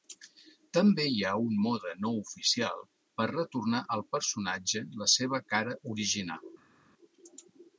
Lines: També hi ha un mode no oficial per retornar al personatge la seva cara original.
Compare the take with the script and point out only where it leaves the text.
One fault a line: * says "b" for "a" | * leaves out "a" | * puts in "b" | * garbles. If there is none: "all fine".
all fine